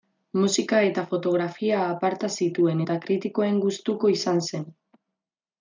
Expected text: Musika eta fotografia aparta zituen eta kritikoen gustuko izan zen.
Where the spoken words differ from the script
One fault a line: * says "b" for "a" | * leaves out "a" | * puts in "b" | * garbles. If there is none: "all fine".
all fine